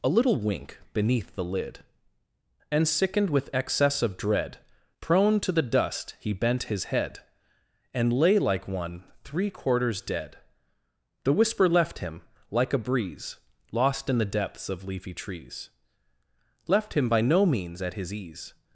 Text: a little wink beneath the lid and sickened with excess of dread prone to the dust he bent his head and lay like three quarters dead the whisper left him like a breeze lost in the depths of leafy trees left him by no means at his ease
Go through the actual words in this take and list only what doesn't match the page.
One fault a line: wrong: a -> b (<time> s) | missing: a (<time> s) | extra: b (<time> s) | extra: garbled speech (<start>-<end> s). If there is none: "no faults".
extra: one (8.7 s)